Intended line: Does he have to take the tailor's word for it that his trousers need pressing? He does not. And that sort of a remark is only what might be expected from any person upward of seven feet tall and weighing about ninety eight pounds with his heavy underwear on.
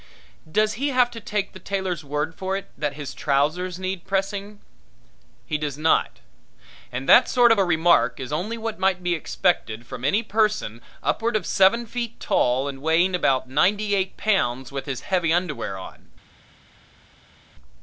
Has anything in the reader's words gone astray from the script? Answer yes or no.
no